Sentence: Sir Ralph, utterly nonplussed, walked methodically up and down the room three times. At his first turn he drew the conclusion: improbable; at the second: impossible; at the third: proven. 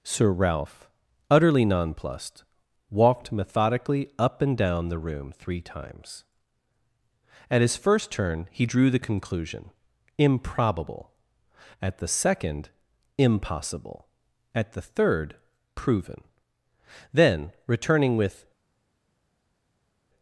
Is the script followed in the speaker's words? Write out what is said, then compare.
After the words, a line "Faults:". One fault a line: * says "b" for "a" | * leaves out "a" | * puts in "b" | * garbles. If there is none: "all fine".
Sir Ralph, utterly nonplussed, walked methodically up and down the room three times. At his first turn he drew the conclusion: improbable; at the second: impossible; at the third: proven. Then, returning with
Faults:
* puts in "Then returning with"